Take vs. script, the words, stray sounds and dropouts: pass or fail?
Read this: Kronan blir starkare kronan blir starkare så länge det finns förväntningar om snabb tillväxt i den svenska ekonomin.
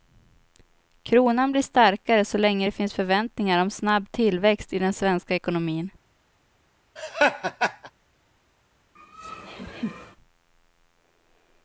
fail